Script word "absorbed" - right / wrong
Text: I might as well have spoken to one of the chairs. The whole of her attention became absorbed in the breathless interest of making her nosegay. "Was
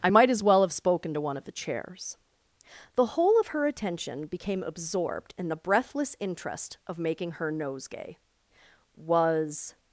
right